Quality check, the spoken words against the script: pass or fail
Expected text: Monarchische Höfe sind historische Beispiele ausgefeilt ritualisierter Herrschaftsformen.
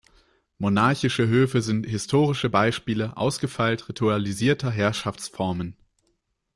pass